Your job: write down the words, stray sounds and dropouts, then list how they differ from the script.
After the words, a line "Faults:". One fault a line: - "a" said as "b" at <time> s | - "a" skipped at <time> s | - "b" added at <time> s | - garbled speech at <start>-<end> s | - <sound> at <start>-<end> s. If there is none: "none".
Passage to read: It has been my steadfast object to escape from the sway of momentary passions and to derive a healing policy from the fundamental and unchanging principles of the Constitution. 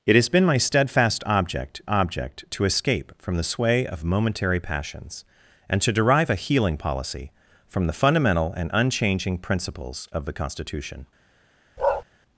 It has been my steadfast object object to escape from the sway of momentary passions and to derive a healing policy from the fundamental and unchanging principles of the Constitution.
Faults:
- "object" added at 1.9 s
- bark at 11.8-12.0 s